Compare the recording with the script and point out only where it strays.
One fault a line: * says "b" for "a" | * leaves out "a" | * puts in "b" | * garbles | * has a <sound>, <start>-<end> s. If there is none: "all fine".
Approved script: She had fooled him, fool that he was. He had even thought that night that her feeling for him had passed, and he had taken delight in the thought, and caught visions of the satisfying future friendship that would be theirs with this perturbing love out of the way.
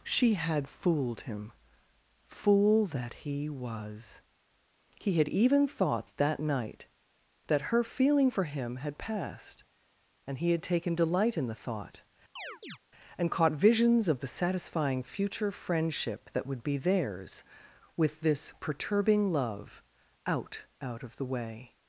* has a chirp, 12.4-12.8 s
* puts in "out"